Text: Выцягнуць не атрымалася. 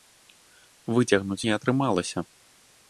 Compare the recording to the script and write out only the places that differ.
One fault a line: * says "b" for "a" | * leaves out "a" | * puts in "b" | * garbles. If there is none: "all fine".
all fine